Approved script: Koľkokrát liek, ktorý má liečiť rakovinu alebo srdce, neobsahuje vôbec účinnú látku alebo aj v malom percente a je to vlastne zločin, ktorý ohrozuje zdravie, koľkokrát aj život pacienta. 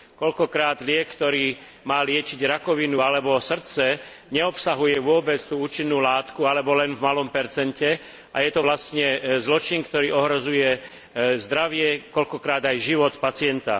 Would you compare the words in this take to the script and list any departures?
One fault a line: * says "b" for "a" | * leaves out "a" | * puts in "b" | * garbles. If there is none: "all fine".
* puts in "tú"
* says "len" for "aj"